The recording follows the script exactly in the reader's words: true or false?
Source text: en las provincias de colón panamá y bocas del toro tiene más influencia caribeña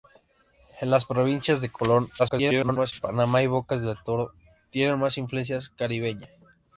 false